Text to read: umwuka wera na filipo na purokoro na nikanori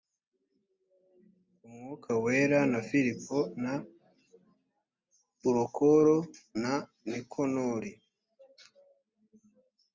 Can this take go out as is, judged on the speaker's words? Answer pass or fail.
pass